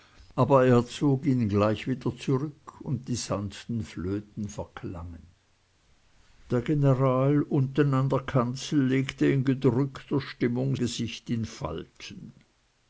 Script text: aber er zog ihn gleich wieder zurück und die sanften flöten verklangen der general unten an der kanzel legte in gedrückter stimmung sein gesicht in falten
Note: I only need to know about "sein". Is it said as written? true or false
false